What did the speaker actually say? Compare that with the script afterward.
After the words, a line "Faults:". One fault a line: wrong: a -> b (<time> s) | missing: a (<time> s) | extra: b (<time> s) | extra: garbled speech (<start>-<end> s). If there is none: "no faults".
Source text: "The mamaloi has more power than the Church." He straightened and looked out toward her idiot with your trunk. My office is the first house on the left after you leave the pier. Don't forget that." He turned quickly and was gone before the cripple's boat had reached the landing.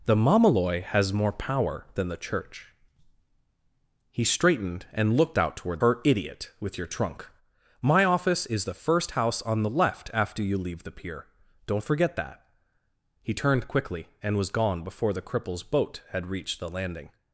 "The mamaloi has more power than the Church." He straightened and looked out toward her idiot with your trunk. My office is the first house on the left after you leave the pier. Don't forget that." He turned quickly and was gone before the cripple's boat had reached the landing.
Faults:
no faults